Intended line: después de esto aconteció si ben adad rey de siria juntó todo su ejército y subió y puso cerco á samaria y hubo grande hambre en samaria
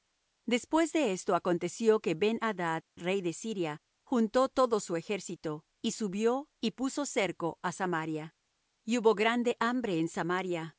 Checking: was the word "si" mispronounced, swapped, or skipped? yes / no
yes